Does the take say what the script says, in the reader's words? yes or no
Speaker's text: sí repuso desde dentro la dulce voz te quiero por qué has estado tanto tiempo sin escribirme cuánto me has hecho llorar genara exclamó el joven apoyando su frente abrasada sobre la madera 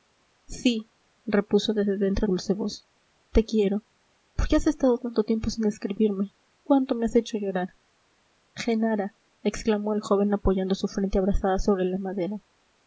no